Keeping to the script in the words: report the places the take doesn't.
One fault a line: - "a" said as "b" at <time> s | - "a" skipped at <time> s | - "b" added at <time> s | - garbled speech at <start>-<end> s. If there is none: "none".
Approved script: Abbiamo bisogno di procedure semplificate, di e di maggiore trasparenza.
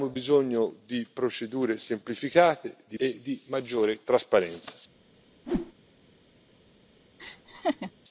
none